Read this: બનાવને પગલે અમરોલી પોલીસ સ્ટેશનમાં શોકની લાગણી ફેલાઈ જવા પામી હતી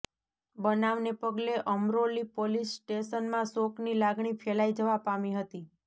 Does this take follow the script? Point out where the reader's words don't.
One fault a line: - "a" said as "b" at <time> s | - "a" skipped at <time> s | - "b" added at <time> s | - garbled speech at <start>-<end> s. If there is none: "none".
none